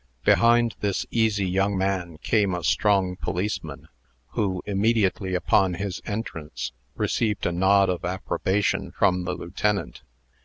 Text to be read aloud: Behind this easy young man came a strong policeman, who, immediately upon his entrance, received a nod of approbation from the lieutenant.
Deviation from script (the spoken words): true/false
false